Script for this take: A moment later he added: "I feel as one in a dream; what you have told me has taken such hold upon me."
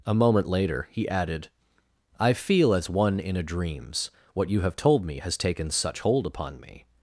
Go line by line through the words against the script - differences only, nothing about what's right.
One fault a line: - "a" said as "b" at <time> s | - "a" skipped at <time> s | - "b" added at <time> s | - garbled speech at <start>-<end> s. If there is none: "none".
- "dream" said as "dreams" at 3.4 s